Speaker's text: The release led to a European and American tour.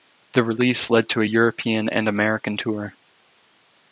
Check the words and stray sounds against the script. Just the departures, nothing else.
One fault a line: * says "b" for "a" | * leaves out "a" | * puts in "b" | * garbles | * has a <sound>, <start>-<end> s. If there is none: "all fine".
all fine